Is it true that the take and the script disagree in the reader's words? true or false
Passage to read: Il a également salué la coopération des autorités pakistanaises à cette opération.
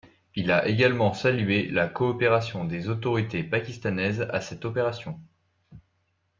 false